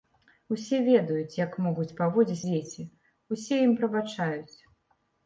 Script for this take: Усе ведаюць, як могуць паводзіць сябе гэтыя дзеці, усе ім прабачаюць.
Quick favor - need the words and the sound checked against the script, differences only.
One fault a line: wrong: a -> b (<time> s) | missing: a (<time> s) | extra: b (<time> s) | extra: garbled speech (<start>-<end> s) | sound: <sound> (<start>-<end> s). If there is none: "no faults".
missing: сябе гэтыя (2.4 s)